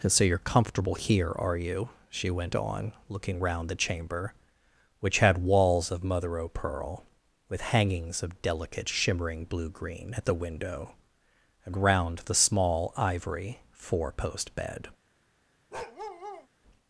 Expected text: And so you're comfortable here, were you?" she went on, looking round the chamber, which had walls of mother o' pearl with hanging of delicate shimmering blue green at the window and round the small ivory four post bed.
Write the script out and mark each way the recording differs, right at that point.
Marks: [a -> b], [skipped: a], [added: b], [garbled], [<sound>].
And so you're comfortable here, [were -> are] you?" she went on, looking round the chamber, which had walls of mother o' pearl with [hanging -> hangings] of delicate shimmering blue green at the window and round the small ivory four post bed. [bark]